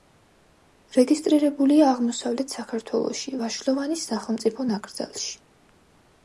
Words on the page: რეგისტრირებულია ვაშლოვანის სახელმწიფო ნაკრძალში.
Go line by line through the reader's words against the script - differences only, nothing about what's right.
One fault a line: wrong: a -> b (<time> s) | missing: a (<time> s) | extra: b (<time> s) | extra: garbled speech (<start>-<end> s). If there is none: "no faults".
extra: აღმოსავლეთ საქართველოში (1.9 s)